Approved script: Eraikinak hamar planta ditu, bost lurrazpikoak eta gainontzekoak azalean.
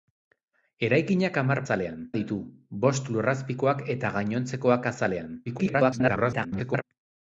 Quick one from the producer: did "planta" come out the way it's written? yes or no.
no